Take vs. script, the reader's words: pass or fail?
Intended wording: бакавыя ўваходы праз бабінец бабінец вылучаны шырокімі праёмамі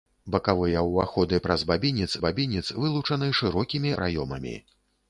pass